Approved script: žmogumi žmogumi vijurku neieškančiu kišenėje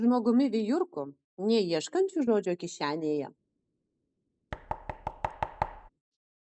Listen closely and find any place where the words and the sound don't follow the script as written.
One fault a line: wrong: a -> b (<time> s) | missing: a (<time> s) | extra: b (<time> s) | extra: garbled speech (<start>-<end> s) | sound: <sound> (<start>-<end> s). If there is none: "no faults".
missing: žmogumi (0.5 s)
extra: žodžio (2.3 s)
sound: thud (4.5-5.9 s)